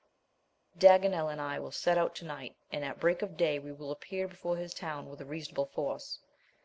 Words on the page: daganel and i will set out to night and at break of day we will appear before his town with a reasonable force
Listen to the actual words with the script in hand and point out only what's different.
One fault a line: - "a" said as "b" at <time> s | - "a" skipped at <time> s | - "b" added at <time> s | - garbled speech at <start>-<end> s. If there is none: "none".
none